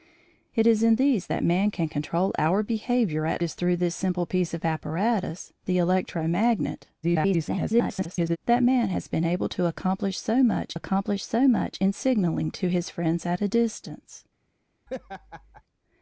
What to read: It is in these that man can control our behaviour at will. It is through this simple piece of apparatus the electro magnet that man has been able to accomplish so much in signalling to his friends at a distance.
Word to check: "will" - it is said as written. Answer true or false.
false